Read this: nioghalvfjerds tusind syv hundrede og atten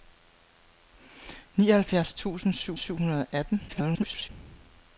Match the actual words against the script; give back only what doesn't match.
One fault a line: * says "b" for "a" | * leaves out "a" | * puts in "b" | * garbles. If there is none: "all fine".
* puts in "syv"
* garbles